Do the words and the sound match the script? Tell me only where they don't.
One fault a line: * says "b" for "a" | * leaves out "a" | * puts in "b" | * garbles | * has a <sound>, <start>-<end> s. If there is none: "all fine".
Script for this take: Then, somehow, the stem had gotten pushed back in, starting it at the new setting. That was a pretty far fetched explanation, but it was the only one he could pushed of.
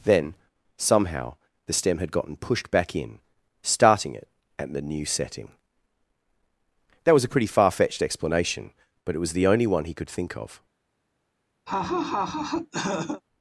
* says "think" for "pushed"
* has a laugh, 11.7-13.2 s